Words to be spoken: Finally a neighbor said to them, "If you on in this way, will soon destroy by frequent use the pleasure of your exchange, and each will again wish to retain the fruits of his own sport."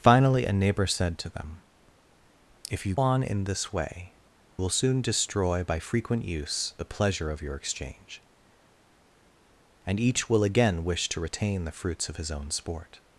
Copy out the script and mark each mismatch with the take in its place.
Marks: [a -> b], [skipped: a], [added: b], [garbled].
Finally a neighbor said to them, "If you on in this way, will soon destroy by frequent use the pleasure of your exchange, and each will again wish to retain the fruits of his own sport."